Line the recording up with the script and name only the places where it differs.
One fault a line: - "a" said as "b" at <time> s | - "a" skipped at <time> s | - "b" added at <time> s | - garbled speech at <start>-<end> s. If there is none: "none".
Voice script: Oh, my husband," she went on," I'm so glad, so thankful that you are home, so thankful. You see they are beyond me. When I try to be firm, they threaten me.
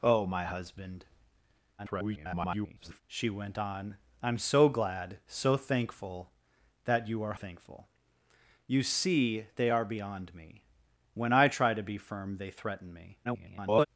- garbled speech at 1.8-3.0 s
- "home so" skipped at 7.3 s
- garbled speech at 13.2-13.9 s